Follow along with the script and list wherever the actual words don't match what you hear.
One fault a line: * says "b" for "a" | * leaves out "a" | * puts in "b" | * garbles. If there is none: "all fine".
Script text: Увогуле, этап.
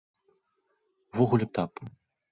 all fine